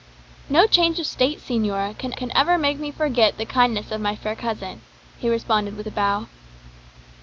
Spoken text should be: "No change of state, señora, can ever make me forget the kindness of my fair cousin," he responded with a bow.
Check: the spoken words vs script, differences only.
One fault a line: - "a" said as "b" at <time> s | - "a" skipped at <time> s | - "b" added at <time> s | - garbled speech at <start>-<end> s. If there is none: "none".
- "can" added at 2.1 s